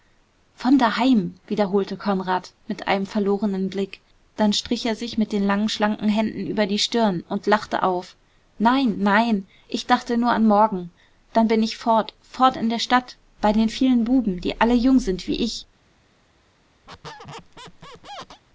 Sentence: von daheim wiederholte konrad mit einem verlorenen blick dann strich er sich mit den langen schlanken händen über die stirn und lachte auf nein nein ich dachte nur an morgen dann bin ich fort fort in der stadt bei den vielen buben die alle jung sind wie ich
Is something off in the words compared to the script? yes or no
no